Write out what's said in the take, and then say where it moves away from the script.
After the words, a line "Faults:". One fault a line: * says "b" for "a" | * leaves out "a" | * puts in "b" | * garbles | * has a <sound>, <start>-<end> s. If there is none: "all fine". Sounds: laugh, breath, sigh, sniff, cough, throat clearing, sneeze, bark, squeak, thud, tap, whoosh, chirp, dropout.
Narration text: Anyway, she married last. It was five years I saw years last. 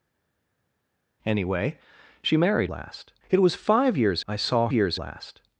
Anyway, she married last. It was five years I saw years last.
Faults:
all fine